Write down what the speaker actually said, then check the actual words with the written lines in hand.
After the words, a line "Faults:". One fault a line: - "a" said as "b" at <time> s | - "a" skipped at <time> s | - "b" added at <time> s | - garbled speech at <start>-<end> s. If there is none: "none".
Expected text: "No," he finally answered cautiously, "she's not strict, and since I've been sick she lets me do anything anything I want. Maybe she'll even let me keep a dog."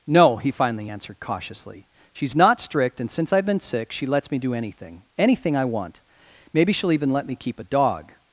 "No," he finally answered cautiously, "she's not strict, and since I've been sick she lets me do anything anything I want. Maybe she'll even let me keep a dog."
Faults:
none